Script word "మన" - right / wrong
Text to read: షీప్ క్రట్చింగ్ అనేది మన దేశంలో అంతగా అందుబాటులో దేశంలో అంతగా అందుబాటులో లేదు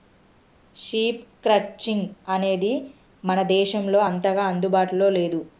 right